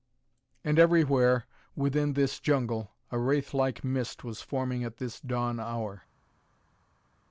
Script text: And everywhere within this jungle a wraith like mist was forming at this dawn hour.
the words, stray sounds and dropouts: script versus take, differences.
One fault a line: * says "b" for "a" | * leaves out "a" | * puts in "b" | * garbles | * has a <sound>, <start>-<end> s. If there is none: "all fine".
all fine